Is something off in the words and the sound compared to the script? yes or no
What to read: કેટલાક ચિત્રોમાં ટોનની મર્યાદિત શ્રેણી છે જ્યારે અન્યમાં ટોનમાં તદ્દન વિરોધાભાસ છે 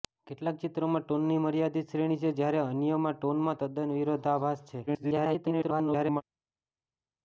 yes